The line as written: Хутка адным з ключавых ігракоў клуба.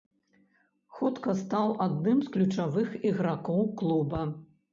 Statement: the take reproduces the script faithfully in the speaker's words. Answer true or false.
false